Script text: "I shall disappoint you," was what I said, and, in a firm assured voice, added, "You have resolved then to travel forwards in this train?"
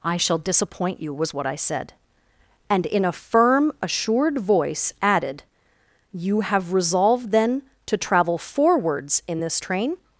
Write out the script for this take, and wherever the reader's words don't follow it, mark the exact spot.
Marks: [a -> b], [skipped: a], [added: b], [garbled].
"I shall disappoint you," was what I said, and, in a firm assured voice, added, "You have resolved then to travel forwards in this train?"